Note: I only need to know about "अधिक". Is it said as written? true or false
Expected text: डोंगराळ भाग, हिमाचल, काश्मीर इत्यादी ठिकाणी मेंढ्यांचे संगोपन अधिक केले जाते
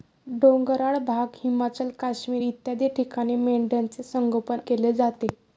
false